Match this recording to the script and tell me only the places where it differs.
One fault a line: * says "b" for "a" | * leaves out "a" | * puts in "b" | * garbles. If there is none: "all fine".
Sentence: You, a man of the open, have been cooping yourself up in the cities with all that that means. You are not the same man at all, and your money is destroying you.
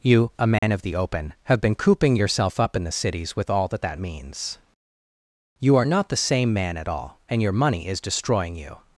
all fine